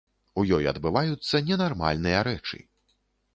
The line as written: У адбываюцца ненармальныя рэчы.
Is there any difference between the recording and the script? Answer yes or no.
yes